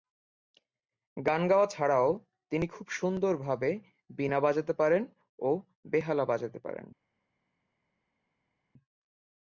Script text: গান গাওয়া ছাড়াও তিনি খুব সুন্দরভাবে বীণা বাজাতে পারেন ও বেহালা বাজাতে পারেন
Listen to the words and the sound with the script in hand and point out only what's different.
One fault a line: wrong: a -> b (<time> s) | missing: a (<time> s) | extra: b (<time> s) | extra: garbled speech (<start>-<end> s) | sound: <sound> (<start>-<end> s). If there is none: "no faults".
no faults